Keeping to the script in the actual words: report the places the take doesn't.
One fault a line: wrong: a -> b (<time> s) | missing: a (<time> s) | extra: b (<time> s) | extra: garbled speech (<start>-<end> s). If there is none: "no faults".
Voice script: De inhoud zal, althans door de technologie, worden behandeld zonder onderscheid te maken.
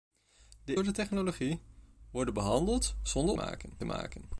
missing: inhoud zal althans (0.8 s)
wrong: onderscheid -> maken (3.3 s)